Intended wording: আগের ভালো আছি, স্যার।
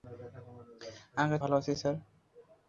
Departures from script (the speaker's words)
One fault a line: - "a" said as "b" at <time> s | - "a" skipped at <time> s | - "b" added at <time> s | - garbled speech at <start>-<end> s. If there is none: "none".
none